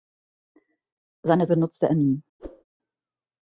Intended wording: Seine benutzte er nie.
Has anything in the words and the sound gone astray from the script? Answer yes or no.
yes